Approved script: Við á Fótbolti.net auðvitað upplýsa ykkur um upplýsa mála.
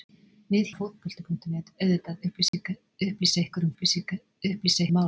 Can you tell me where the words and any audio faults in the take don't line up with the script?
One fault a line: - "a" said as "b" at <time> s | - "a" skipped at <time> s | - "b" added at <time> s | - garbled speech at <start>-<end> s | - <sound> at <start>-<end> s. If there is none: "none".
- dropout at 2.5-2.5 s